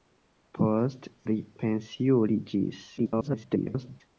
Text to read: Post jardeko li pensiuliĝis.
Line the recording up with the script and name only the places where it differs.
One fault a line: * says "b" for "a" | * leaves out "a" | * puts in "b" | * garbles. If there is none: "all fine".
* leaves out "jardeko"
* garbles